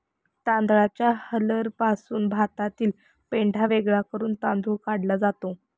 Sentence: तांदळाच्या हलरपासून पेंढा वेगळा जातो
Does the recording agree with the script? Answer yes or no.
no